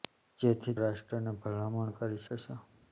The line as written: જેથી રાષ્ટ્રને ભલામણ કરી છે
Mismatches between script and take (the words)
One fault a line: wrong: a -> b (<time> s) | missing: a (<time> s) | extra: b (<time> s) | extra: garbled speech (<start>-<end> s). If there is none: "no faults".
no faults